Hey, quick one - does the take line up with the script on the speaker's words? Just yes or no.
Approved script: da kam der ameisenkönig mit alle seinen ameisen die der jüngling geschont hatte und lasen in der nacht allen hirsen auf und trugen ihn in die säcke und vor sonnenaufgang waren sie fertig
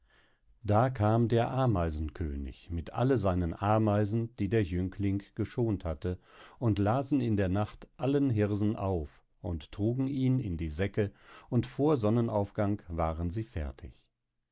yes